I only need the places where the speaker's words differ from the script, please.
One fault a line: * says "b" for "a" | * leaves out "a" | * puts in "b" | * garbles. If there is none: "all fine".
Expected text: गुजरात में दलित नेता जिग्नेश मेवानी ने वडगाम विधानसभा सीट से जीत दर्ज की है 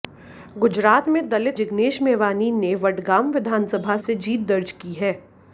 * leaves out "नेता"
* leaves out "सीट"